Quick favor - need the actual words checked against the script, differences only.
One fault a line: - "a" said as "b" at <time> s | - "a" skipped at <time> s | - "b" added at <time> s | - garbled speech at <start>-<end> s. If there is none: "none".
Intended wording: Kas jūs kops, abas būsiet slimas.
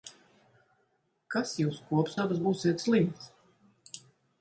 none